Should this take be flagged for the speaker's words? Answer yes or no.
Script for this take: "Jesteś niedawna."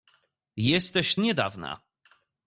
no